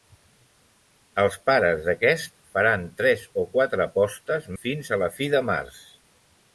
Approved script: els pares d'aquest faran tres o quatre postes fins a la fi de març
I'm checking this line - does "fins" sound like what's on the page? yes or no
yes